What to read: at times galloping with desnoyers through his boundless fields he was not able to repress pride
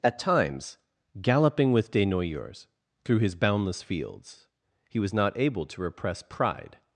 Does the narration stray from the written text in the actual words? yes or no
no